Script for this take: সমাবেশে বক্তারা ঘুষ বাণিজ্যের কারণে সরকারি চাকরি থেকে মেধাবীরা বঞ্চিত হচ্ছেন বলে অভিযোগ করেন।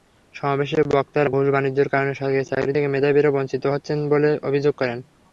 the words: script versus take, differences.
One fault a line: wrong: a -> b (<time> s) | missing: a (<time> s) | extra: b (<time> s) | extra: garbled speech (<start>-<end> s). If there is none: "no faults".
no faults